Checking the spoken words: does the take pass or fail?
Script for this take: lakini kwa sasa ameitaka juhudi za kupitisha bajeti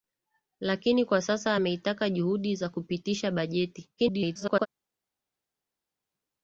fail